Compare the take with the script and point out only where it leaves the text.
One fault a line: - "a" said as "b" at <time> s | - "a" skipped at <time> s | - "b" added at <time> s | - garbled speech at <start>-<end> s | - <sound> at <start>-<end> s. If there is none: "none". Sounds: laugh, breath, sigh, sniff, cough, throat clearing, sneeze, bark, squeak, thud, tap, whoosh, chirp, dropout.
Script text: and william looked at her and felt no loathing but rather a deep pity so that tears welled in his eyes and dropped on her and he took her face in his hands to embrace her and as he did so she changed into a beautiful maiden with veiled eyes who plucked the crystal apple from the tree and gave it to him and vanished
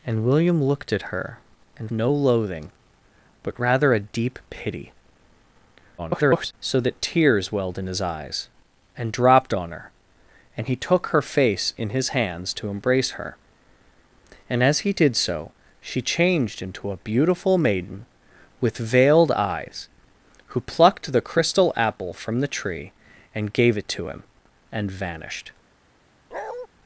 - "felt" skipped at 1.9 s
- garbled speech at 6.0-6.5 s
- bark at 26.3-26.7 s